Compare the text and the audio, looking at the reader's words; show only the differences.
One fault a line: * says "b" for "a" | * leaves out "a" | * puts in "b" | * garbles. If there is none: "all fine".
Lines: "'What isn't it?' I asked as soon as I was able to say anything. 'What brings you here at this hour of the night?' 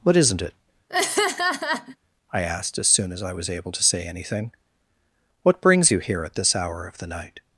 all fine